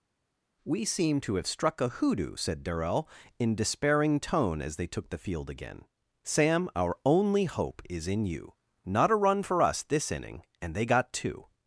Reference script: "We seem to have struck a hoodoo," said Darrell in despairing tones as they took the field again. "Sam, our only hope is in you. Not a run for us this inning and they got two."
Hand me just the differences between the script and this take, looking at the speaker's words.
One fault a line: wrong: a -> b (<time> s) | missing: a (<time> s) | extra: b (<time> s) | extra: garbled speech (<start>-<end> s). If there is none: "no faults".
wrong: tones -> tone (4.2 s)